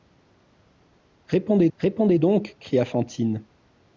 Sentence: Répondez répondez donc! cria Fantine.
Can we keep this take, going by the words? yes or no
yes